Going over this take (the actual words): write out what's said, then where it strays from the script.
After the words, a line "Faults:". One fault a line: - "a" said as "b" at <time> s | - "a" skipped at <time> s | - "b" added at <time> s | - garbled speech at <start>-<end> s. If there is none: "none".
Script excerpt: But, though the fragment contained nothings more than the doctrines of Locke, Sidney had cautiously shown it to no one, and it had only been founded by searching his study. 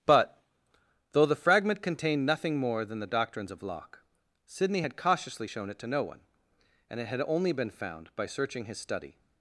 But, though the fragment contained nothing more than the doctrines of Locke, Sidney had cautiously shown it to no one, and it had only been found by searching his study.
Faults:
- "nothings" said as "nothing" at 2.2 s
- "founded" said as "found" at 7.7 s